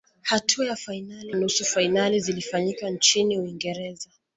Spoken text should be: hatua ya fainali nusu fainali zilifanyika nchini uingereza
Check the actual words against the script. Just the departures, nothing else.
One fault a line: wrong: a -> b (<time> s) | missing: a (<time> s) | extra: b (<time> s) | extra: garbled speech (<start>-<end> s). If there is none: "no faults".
no faults